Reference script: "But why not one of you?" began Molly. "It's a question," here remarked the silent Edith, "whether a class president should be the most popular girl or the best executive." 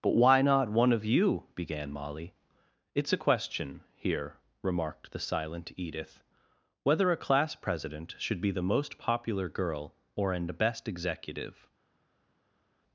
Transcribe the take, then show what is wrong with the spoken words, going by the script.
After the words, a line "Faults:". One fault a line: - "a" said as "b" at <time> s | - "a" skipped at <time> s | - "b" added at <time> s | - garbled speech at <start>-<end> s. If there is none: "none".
"But why not one of you?" began Molly. "It's a question," here remarked the silent Edith, "whether a class president should be the most popular girl or an best executive."
Faults:
- "the" said as "an" at 10.3 s